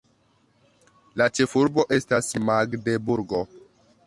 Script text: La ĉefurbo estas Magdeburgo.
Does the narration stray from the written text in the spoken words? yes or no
no